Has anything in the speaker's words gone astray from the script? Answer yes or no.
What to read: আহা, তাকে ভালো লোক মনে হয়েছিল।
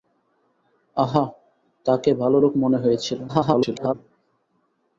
yes